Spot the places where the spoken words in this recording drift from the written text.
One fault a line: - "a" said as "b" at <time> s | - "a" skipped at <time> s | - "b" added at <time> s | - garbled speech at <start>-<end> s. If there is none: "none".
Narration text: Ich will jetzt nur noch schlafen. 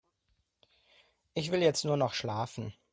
none